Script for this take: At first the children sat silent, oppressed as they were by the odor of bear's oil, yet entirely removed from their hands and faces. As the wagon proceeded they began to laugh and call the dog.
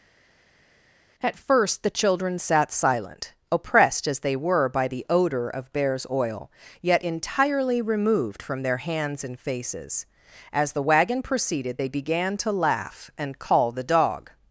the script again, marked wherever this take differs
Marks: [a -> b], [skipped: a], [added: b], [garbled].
At first the children sat silent, oppressed as they were by the odor of bear's oil, yet entirely removed from their hands and faces. As the wagon proceeded they began to laugh and call the dog.